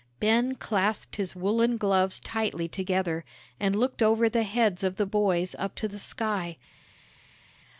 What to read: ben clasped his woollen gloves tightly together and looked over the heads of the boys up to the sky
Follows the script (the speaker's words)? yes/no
yes